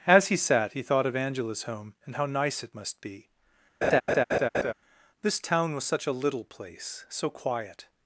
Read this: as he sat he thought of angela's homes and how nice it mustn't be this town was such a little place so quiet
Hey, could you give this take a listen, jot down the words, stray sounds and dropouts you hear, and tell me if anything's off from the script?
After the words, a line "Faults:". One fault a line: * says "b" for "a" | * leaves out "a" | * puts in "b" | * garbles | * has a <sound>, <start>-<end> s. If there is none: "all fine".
as he sat he thought of angela's home and how nice it must be this town was such a little place so quiet
Faults:
* says "home" for "homes"
* says "must" for "mustn't"
* has a laugh, 3.8-4.7 s